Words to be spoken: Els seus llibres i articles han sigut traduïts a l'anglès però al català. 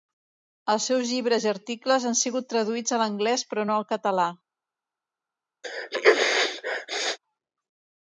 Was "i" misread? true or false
false